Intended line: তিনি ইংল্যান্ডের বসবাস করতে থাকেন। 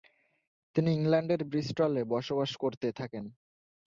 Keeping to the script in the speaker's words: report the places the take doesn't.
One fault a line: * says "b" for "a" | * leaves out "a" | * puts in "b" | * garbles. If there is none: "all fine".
* puts in "ব্রিস্টলে"